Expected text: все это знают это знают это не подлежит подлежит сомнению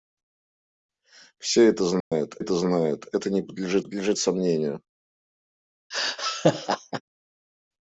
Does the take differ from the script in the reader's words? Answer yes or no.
no